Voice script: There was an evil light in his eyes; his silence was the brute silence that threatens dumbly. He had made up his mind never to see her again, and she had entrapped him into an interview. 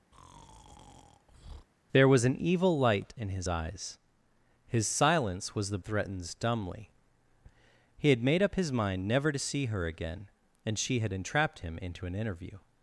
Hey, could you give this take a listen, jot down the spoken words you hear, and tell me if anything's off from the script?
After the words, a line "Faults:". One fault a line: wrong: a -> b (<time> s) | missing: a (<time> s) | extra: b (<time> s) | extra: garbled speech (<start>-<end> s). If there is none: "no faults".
There was an evil light in his eyes; his silence was the threatens dumbly. He had made up his mind never to see her again, and she had entrapped him into an interview.
Faults:
missing: brute silence that (5.8 s)